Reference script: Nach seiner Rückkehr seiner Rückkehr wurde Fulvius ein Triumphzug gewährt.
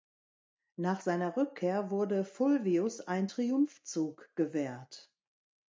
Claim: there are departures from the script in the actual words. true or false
true